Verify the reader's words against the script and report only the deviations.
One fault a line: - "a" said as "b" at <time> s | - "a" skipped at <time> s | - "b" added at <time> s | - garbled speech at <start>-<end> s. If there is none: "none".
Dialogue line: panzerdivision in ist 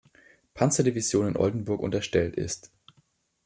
- "oldenburg unterstellt" added at 1.4 s